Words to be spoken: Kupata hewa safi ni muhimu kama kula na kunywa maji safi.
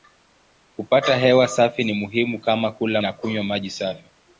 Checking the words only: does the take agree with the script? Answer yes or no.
yes